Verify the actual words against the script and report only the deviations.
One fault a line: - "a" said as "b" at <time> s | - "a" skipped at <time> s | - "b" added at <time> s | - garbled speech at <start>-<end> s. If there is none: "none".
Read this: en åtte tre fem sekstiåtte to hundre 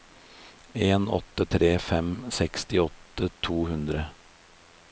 none